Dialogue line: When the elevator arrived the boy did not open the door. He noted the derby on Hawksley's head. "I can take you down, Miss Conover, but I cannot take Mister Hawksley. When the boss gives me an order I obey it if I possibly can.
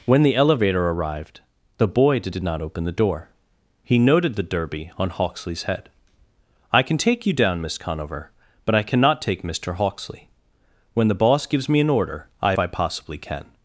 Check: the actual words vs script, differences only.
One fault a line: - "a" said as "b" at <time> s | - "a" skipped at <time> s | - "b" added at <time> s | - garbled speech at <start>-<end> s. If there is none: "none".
- "did" added at 2.3 s
- "obey it if" skipped at 12.6 s